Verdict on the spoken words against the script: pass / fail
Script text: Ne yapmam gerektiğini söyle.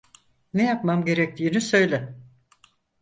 pass